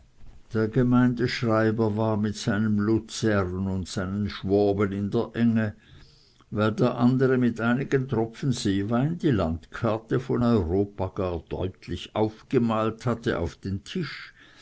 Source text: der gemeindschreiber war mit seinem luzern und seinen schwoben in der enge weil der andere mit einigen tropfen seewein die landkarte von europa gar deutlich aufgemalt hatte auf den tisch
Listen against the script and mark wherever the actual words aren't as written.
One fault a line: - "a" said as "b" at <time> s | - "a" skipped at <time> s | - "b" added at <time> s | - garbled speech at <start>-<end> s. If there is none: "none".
none